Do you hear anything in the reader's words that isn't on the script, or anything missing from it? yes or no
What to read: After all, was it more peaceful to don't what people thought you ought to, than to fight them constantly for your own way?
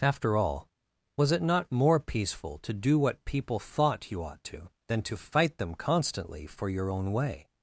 yes